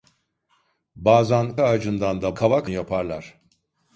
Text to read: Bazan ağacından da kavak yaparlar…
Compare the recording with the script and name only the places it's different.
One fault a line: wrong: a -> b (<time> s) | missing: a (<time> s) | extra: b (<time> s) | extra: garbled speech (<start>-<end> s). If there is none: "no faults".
no faults